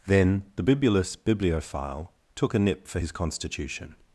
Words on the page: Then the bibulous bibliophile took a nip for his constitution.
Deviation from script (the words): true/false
false